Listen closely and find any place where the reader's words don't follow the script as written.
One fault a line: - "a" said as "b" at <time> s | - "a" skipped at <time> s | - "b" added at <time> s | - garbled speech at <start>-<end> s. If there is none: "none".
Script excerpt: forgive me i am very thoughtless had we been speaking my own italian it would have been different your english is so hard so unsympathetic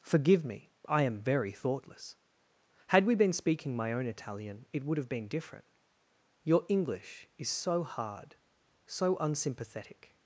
none